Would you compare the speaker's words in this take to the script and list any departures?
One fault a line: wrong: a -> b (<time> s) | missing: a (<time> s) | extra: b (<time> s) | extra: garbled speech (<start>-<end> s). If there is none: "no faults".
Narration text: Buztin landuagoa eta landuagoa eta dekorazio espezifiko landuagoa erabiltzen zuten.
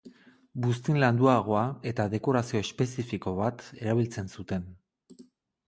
missing: landuagoa eta (2.1 s)
wrong: landuagoa -> bat (3.4 s)